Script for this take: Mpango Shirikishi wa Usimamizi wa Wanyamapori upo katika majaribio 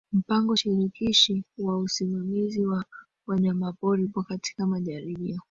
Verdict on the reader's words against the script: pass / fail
pass